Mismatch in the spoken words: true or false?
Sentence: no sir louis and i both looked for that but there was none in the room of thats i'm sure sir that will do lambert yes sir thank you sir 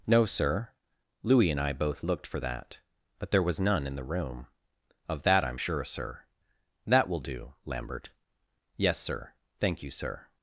true